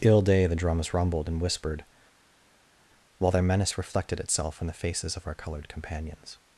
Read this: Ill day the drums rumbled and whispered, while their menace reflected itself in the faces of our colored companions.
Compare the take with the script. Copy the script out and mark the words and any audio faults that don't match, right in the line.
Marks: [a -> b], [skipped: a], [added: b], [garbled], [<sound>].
Ill day the drums rumbled and whispered, while their menace reflected itself in the faces of our colored companions.